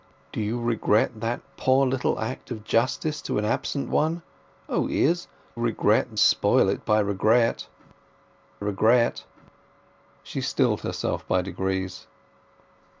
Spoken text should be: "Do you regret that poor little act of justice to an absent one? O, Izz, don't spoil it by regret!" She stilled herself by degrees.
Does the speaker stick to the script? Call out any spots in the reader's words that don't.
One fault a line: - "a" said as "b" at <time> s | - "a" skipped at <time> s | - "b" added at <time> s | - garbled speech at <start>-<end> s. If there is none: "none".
- "don't" said as "regret" at 5.6 s
- "regret" added at 8.6 s